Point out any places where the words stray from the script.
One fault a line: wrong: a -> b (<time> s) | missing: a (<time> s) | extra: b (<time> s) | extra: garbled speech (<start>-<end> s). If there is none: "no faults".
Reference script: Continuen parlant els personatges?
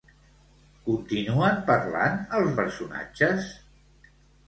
no faults